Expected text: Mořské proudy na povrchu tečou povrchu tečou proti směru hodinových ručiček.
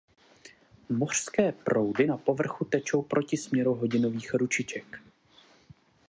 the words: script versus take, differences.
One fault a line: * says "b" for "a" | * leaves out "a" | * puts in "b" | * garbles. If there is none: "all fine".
* leaves out "povrchu tečou"